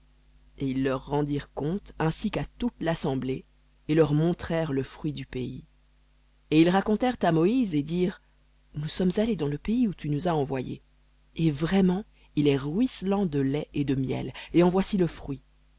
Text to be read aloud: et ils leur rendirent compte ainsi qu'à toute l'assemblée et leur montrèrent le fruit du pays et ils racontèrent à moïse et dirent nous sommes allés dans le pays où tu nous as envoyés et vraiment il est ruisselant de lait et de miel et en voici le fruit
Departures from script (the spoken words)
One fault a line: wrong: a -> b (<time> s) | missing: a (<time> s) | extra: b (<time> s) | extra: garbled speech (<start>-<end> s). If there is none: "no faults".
no faults